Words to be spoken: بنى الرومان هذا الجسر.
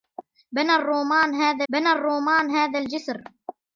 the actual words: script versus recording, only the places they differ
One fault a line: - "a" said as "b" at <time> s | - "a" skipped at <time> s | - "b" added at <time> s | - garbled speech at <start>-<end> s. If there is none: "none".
- "بنى الرومان هذا" added at 1.7 s